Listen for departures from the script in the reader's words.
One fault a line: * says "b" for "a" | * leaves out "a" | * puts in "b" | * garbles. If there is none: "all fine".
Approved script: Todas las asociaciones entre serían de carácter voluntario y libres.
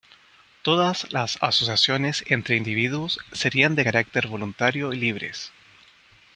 * puts in "individuos"